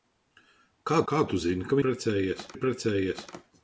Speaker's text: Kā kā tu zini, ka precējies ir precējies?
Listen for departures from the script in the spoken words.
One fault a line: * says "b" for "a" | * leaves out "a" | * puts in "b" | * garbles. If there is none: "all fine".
all fine